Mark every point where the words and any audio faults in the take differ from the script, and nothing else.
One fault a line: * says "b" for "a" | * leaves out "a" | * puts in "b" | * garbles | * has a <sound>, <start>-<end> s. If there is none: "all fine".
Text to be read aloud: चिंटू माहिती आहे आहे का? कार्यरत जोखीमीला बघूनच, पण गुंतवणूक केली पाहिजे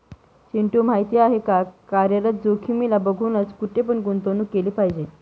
* leaves out "आहे"
* puts in "कुठे"